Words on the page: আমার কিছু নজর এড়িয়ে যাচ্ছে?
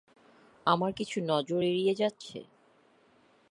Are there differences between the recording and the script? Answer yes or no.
no